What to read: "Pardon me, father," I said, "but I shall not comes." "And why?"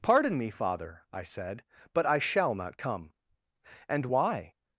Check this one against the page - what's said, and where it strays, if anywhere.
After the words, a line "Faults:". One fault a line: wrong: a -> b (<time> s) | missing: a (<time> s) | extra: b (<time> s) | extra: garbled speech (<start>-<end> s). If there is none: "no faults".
"Pardon me, father," I said, "but I shall not come." "And why?"
Faults:
wrong: comes -> come (2.8 s)